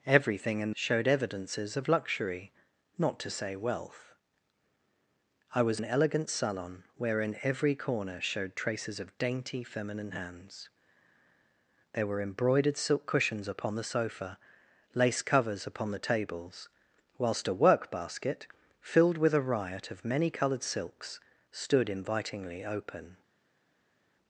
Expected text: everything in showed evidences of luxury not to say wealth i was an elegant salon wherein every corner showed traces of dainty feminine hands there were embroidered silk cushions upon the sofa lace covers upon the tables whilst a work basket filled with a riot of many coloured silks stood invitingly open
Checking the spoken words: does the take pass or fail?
pass